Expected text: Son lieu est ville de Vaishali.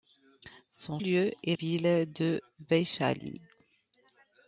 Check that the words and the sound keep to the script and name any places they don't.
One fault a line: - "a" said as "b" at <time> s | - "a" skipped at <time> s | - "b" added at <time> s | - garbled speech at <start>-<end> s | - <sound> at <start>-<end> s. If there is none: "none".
none